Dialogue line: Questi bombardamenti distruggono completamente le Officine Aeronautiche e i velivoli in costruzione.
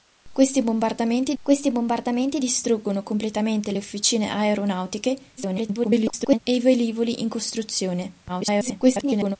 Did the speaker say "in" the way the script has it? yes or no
yes